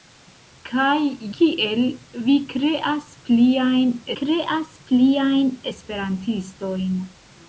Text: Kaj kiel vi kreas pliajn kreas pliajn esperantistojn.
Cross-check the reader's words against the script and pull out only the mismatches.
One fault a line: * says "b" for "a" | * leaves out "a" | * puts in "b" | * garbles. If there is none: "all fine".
all fine